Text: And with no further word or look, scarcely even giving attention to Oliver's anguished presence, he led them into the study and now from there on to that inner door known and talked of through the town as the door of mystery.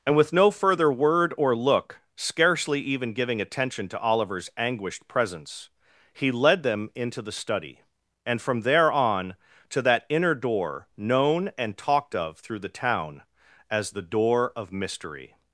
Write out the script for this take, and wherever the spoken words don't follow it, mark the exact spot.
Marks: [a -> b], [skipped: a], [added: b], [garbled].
And with no further word or look, scarcely even giving attention to Oliver's anguished presence, he led them into the study and [skipped: now] from there on to that inner door known and talked of through the town as the door of mystery.